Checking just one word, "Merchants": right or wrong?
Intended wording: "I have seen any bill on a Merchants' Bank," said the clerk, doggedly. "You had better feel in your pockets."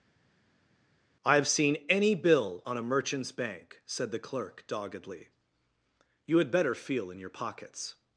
right